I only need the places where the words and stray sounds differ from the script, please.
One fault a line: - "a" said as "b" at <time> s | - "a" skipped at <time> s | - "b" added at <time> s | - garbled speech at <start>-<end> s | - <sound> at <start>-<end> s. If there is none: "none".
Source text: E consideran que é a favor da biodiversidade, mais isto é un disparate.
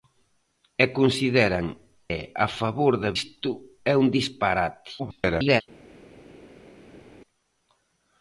- "que" skipped at 1.7 s
- "biodiversidade mais" skipped at 3.1 s
- garbled speech at 5.0-5.6 s